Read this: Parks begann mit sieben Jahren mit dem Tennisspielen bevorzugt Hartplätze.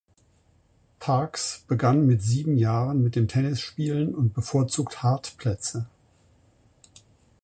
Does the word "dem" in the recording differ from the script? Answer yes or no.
no